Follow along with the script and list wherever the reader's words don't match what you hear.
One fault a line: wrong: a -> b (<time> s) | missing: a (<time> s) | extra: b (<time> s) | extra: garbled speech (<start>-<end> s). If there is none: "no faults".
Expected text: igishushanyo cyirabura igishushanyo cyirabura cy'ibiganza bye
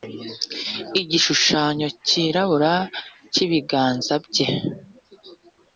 missing: igishushanyo cyirabura (2.7 s)